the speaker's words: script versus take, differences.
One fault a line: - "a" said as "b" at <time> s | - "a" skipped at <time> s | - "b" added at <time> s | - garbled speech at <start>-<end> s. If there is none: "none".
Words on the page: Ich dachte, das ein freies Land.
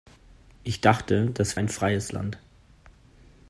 none